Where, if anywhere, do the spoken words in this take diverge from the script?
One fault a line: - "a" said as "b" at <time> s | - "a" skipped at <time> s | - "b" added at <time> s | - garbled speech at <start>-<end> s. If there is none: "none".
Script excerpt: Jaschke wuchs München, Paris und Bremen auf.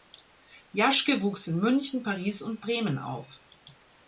- "in" added at 1.4 s